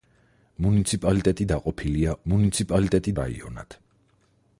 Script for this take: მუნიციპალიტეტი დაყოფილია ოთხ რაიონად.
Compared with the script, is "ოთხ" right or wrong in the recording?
wrong